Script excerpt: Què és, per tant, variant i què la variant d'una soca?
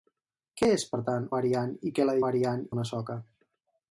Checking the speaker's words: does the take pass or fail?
pass